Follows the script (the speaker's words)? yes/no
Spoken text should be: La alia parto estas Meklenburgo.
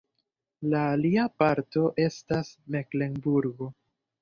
yes